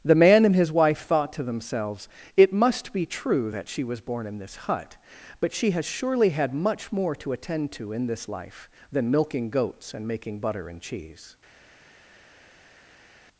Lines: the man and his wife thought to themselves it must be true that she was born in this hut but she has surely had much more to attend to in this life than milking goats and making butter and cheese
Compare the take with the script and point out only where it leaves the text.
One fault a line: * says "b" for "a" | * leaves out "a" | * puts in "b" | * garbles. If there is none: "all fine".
all fine